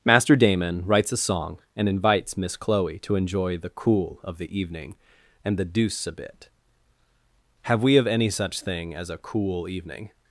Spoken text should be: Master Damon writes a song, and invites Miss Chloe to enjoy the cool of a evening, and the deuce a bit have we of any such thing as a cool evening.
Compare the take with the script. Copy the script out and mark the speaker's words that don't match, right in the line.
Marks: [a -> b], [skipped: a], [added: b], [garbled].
Master Damon writes a song, and invites Miss Chloe to enjoy the cool of [a -> the] evening, and the deuce a bit have we of any such thing as a cool evening.